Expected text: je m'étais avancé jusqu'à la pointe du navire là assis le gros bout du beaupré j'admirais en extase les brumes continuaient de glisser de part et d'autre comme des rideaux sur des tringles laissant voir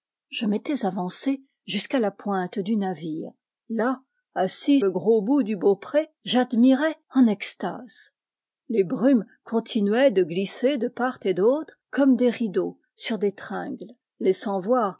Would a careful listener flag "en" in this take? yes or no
no